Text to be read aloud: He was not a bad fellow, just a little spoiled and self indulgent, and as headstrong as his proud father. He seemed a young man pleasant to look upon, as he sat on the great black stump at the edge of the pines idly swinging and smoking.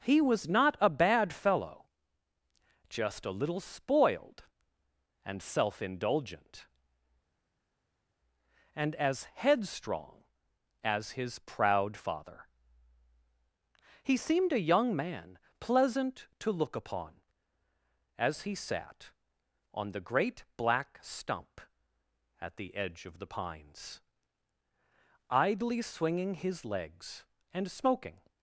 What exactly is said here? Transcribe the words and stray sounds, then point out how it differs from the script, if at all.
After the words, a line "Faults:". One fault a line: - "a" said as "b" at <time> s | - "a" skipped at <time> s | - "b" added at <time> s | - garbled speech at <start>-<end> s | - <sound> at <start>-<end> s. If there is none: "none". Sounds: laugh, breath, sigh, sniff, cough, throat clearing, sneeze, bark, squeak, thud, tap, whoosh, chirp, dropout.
He was not a bad fellow, just a little spoiled and self indulgent, and as headstrong as his proud father. He seemed a young man pleasant to look upon, as he sat on the great black stump at the edge of the pines idly swinging his legs and smoking.
Faults:
- "his legs" added at 26.3 s